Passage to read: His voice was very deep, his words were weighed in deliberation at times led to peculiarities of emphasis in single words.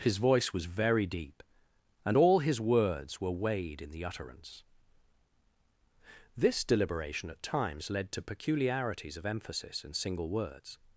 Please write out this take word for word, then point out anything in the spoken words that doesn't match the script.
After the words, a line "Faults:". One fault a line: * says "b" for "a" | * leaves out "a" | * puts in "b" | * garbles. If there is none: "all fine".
His voice was very deep, and all his words were weighed in the utterance. This deliberation at times led to peculiarities of emphasis in single words.
Faults:
* puts in "and all"
* puts in "the utterance This"